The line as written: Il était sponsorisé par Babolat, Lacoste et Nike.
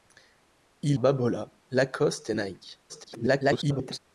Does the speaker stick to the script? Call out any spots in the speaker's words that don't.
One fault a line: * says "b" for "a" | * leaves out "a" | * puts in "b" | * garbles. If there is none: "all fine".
* leaves out "était sponsorisé par"
* garbles